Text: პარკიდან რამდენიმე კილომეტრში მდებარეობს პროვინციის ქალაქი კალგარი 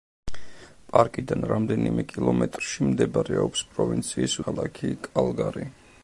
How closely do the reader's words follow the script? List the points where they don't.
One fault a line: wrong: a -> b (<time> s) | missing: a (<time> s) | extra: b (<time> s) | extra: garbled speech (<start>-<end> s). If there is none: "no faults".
no faults